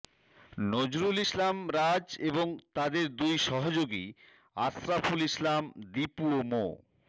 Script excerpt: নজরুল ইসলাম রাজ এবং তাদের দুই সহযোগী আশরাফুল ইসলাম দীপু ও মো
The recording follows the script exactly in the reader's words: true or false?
true